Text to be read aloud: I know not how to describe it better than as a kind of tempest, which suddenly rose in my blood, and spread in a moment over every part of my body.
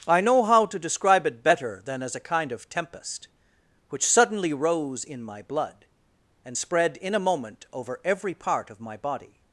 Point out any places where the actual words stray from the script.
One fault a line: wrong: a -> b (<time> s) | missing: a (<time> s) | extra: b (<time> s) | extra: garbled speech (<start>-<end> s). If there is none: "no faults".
missing: not (0.4 s)